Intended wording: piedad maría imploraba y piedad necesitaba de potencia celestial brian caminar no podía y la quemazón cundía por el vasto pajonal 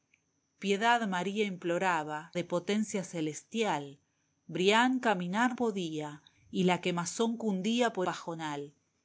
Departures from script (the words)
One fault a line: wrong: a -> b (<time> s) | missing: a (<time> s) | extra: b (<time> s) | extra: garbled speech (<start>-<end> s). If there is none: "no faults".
missing: y piedad necesitaba (2.3 s)
missing: no (5.5 s)
missing: el vasto (8.1 s)